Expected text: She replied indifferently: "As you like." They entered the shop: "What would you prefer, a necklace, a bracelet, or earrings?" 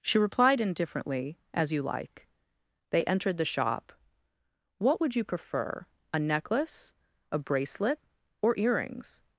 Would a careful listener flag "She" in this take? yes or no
no